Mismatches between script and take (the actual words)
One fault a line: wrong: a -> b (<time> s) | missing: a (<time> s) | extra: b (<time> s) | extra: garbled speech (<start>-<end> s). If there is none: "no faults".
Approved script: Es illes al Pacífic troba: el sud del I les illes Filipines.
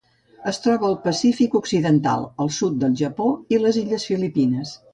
wrong: illes -> troba (0.6 s)
wrong: troba -> occidental (1.6 s)
extra: Japó (3.0 s)